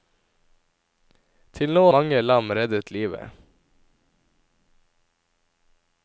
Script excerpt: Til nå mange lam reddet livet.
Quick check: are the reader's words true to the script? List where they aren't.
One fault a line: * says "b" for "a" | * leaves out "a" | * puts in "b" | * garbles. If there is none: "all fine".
all fine